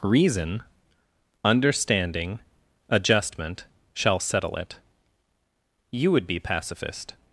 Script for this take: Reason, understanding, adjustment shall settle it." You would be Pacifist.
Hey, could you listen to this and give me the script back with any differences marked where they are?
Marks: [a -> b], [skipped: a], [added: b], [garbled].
Reason, understanding, adjustment shall settle it." You would be Pacifist.